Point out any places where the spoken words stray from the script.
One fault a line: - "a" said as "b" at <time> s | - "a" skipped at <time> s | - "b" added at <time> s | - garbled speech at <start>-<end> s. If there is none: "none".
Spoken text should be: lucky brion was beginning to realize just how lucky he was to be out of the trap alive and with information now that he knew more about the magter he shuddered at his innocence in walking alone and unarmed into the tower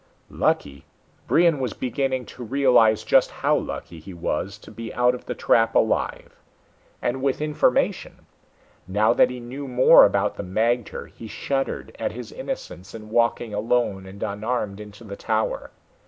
none